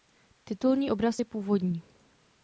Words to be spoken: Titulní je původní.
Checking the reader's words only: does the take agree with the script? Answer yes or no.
no